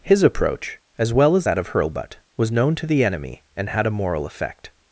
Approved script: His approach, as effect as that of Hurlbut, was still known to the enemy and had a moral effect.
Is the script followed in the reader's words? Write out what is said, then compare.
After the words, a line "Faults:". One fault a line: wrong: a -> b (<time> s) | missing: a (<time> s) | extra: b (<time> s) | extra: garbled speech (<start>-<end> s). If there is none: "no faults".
His approach, as well as that of Hurlbut, was known to the enemy and had a moral effect.
Faults:
wrong: effect -> well (1.1 s)
missing: still (2.5 s)